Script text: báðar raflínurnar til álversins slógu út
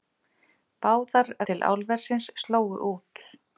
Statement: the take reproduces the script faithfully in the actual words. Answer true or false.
false